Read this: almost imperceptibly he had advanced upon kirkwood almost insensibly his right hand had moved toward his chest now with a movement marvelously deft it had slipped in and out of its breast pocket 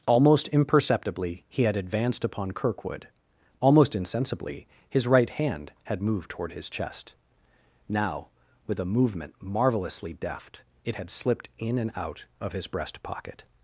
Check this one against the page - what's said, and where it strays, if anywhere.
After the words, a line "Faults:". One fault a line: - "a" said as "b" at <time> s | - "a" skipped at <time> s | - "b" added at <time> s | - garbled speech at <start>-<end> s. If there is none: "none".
almost imperceptibly he had advanced upon kirkwood almost insensibly his right hand had moved toward his chest now with a movement marvelously deft it had slipped in and out of his breast pocket
Faults:
- "its" said as "his" at 12.5 s